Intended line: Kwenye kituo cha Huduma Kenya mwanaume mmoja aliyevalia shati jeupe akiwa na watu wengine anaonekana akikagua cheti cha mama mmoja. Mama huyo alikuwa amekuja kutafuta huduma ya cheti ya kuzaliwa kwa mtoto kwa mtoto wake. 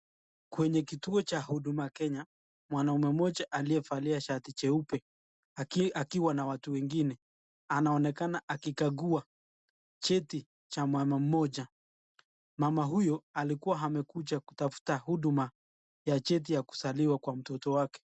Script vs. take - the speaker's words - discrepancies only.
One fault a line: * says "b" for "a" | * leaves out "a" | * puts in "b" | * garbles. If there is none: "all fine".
* leaves out "kwa mtoto"